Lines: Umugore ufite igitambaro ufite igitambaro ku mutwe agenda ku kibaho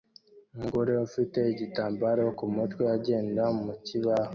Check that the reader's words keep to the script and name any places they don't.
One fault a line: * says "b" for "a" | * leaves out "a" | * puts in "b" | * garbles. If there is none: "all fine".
* leaves out "ufite igitambaro"
* says "mu" for "ku"